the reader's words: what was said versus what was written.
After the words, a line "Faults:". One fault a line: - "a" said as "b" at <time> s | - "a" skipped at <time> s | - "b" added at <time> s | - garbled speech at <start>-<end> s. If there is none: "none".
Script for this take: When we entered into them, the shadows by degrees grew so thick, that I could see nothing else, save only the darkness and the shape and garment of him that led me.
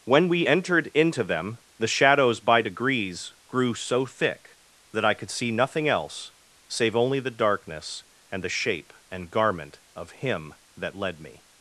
When we entered into them, the shadows by degrees grew so thick, that I could see nothing else, save only the darkness and the shape and garment of him that led me.
Faults:
none